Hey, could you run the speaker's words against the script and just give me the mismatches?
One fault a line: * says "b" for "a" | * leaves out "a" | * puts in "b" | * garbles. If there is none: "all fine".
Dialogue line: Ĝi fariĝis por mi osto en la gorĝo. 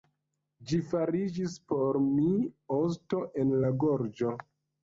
all fine